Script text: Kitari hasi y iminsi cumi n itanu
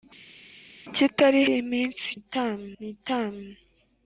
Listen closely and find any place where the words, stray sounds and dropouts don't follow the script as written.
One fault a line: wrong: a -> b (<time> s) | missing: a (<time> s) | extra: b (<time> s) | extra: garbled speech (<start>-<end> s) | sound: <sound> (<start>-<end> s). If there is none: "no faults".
missing: hasi (1.4 s)
wrong: cumi -> itanu (2.2 s)